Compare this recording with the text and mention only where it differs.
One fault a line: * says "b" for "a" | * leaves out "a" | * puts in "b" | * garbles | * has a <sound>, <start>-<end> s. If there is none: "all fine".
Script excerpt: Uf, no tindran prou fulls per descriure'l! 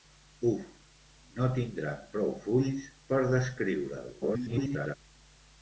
* garbles